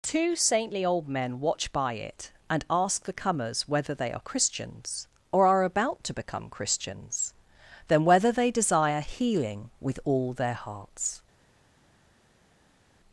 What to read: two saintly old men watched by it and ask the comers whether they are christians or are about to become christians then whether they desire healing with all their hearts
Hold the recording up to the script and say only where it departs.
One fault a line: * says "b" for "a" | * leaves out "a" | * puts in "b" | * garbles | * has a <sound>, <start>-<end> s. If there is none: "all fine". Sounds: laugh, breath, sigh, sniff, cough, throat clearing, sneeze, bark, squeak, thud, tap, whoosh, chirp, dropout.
* says "watch" for "watched"